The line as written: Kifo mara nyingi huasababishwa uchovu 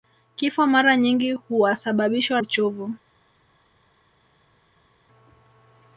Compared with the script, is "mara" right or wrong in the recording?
right